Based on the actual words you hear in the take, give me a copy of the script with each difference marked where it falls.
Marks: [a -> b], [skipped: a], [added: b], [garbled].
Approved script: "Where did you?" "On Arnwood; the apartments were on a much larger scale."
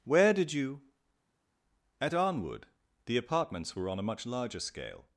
"Where did you?" ["On -> At] Arnwood; the apartments were on a much larger scale."